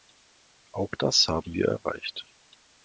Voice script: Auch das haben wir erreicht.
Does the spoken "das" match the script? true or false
true